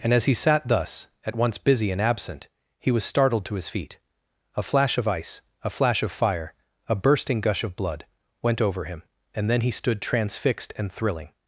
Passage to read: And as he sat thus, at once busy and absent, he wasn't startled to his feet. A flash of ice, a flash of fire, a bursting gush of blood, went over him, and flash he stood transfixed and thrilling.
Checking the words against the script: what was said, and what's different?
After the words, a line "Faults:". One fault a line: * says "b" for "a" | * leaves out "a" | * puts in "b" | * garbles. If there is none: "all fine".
And as he sat thus, at once busy and absent, he was startled to his feet. A flash of ice, a flash of fire, a bursting gush of blood, went over him, and then he stood transfixed and thrilling.
Faults:
* says "was" for "wasn't"
* says "then" for "flash"